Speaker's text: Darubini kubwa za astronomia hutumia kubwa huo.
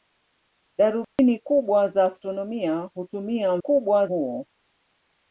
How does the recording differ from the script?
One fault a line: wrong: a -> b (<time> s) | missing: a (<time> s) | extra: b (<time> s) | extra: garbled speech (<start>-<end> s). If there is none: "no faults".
no faults